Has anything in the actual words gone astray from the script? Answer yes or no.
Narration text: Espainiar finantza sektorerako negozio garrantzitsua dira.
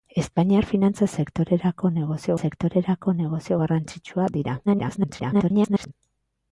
yes